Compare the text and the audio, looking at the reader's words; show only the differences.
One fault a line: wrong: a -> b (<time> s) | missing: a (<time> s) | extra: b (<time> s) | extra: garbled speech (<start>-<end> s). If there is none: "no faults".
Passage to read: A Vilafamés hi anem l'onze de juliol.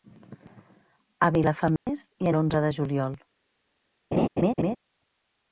missing: anem (2.3 s)